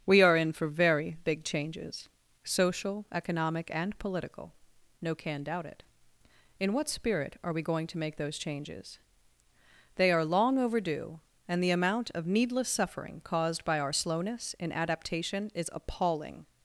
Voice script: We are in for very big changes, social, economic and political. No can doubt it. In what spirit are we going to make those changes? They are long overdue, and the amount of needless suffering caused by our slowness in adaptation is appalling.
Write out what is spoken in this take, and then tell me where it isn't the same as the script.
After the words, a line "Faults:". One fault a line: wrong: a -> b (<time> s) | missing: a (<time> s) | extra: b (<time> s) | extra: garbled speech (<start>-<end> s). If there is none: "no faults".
We are in for very big changes, social, economic and political. No can doubt it. In what spirit are we going to make those changes? They are long overdue, and the amount of needless suffering caused by our slowness in adaptation is appalling.
Faults:
no faults